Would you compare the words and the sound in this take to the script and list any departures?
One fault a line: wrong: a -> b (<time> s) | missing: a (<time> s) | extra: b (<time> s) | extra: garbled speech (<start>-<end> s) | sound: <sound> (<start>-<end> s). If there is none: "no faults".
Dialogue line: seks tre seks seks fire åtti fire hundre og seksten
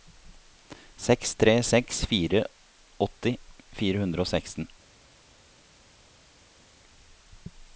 missing: seks (2.0 s)